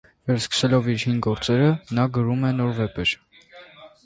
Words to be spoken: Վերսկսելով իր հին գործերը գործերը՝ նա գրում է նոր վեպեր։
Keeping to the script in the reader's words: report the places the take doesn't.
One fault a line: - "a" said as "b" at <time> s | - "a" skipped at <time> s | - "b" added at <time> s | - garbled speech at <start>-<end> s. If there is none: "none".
- "գործերը" skipped at 1.7 s